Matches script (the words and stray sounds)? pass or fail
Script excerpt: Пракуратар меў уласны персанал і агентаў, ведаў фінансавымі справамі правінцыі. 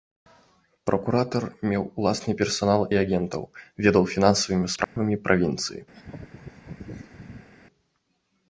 fail